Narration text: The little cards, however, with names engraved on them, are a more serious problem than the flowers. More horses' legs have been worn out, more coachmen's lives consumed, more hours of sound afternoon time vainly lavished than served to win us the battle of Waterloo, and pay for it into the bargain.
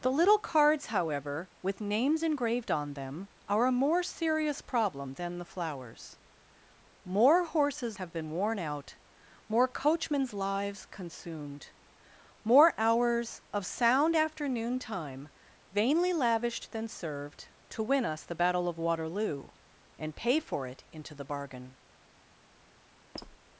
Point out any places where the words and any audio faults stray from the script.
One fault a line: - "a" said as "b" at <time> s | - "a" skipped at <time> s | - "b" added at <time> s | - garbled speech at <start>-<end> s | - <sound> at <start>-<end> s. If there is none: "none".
- "legs" skipped at 8.0 s
- squeak at 23.1-23.4 s